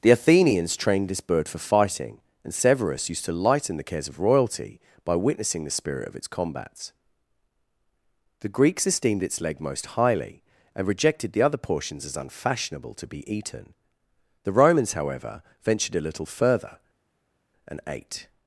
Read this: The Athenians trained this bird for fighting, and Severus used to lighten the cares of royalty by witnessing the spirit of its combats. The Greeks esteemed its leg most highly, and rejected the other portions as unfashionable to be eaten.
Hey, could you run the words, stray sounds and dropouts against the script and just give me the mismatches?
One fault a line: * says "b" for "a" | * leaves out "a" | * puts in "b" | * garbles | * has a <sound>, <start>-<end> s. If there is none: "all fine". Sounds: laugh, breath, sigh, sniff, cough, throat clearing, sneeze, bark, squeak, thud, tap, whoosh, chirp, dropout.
* puts in "The Romans however ventured a little further and ate"